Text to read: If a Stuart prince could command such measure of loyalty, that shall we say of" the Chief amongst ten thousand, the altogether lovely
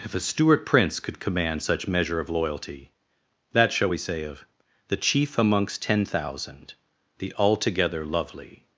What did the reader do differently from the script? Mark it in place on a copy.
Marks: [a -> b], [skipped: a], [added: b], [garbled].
If a Stuart prince could command such measure of loyalty, that shall we say of" the Chief amongst ten thousand, the altogether lovely